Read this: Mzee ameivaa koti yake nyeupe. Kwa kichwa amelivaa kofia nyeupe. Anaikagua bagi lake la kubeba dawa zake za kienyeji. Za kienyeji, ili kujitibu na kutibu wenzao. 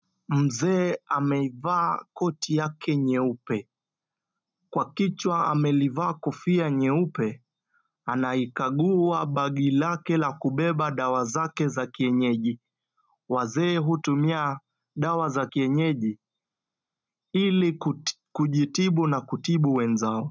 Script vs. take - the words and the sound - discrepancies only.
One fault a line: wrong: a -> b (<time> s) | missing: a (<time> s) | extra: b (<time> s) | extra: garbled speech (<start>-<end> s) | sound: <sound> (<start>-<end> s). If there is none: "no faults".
extra: Wazee hutumia dawa (13.3 s)